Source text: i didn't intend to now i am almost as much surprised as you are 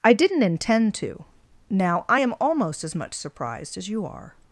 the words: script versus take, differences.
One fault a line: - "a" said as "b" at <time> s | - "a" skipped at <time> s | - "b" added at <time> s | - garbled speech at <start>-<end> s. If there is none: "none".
none